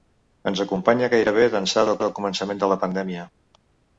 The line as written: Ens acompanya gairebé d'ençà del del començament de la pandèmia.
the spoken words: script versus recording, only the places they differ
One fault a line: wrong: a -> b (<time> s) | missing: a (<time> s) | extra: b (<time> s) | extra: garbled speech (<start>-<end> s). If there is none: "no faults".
no faults